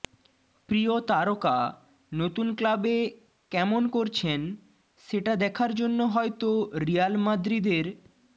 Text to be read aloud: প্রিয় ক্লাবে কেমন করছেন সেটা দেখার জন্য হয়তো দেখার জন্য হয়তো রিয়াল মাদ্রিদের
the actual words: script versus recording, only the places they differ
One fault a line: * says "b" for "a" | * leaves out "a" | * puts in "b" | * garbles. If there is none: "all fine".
* puts in "তারকা নতুন"
* leaves out "দেখার জন্য হয়তো"